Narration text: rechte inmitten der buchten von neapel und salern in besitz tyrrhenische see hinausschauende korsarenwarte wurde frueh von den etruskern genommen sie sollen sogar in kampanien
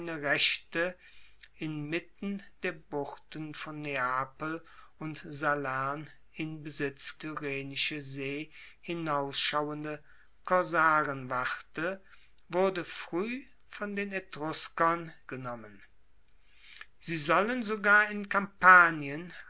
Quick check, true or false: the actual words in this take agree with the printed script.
true